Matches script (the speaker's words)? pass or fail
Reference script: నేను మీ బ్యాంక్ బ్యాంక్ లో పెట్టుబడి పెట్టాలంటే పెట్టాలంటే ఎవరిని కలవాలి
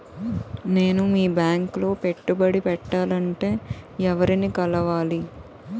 fail